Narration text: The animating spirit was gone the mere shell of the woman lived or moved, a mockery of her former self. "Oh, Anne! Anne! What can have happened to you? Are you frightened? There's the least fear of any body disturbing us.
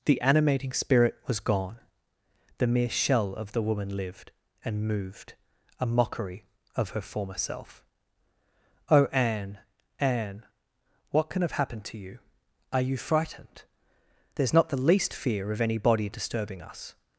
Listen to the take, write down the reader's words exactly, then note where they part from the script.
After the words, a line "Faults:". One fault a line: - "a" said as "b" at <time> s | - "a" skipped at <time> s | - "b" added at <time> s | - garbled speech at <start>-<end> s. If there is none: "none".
The animating spirit was gone the mere shell of the woman lived and moved, a mockery of her former self. "Oh, Anne! Anne! What can have happened to you? Are you frightened? There's not the least fear of any body disturbing us.
Faults:
- "or" said as "and" at 4.6 s
- "not" added at 14.5 s